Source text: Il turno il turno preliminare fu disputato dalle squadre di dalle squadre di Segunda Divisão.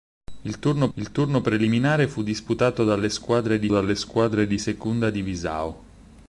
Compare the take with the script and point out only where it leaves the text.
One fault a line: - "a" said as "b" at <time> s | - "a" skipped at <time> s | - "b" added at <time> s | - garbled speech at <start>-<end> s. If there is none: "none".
none